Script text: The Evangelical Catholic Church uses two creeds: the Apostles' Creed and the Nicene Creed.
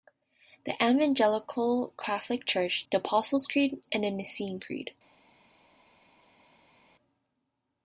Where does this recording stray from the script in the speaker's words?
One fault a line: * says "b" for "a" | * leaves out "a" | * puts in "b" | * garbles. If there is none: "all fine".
* leaves out "uses two creeds"